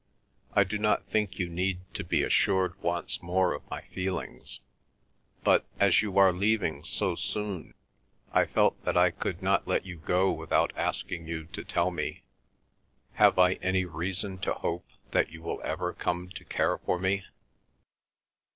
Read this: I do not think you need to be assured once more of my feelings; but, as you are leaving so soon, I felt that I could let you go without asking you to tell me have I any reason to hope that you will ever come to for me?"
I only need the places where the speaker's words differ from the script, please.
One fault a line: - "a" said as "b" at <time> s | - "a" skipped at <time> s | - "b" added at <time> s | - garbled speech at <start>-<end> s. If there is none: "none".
- "not" added at 9.4 s
- "care" added at 16.4 s